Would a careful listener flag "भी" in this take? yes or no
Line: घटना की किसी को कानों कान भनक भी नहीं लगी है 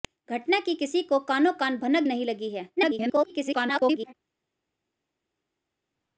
yes